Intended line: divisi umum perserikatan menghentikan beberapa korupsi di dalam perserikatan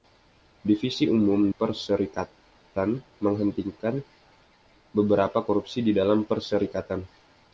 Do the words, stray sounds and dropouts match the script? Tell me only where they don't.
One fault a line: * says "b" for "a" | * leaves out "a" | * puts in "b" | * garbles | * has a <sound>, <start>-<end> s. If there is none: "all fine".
all fine